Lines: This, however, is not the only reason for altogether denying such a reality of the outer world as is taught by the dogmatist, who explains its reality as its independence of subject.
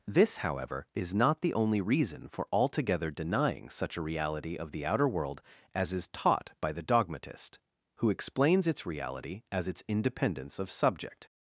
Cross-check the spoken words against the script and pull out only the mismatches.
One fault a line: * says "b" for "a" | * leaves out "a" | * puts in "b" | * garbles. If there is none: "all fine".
all fine